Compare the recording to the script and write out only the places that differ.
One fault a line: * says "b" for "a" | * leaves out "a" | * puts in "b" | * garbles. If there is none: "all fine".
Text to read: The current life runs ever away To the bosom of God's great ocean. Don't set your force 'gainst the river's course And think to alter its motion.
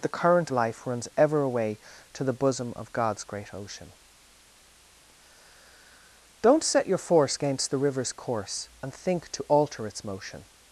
all fine